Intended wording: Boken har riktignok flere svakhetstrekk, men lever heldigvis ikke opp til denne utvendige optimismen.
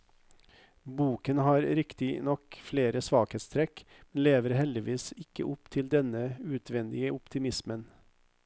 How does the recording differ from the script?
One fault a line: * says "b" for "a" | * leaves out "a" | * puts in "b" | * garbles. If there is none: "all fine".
all fine